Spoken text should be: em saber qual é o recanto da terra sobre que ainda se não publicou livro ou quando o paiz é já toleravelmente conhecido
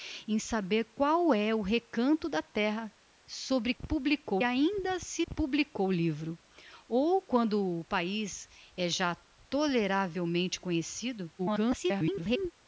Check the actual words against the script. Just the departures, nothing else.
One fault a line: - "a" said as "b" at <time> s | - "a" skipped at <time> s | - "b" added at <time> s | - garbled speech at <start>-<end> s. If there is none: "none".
- "que" said as "publicou" at 3.7 s
- "não" skipped at 5.3 s
- garbled speech at 11.4-12.5 s